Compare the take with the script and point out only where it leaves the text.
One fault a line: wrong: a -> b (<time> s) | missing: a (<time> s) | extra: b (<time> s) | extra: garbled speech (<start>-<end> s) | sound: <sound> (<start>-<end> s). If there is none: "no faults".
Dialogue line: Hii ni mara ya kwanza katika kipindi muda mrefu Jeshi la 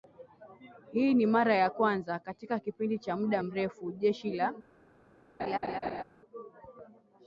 extra: cha (3.0 s)
sound: laugh (5.4-6.0 s)